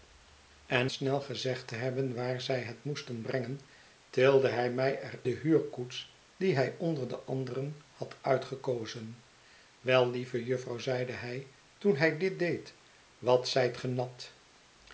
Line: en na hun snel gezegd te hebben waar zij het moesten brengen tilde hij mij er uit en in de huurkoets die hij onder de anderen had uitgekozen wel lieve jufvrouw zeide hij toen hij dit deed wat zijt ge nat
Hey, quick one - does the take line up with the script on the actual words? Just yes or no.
no